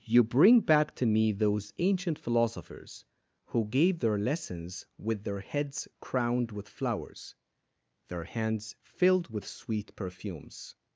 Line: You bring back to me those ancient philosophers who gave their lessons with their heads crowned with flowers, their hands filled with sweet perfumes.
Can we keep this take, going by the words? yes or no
yes